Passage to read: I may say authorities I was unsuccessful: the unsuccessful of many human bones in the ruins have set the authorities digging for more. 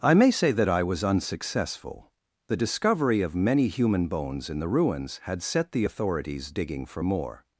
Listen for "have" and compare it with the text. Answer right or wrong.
wrong